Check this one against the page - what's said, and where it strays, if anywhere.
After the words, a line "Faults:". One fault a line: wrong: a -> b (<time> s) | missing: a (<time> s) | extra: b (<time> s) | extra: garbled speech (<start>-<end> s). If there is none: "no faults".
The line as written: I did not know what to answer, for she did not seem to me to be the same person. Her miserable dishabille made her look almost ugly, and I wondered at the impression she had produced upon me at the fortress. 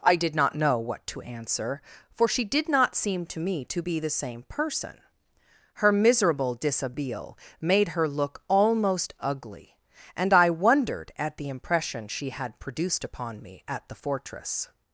I did not know what to answer, for she did not seem to me to be the same person. Her miserable dishabille made her look almost ugly, and I wondered at the impression she had produced upon me at the fortress.
Faults:
no faults